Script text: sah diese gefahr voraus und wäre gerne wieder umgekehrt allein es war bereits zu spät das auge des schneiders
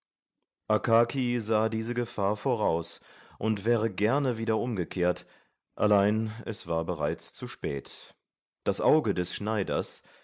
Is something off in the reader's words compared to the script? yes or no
no